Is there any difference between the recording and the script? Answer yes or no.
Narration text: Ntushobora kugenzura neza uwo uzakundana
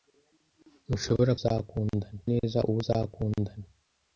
yes